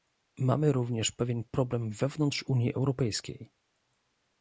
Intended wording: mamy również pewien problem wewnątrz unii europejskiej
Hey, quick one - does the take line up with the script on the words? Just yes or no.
yes